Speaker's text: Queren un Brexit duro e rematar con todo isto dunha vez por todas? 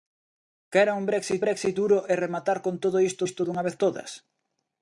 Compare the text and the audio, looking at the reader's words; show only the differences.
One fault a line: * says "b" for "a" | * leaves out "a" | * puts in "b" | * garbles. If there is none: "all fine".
* puts in "Brexit"
* puts in "isto"
* leaves out "por"